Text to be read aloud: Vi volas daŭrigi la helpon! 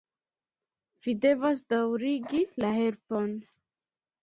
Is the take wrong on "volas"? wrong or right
wrong